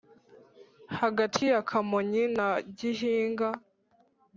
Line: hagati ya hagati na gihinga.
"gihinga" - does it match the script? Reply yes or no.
yes